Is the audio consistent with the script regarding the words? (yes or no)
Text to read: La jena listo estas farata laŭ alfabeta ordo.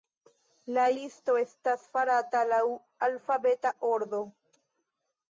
no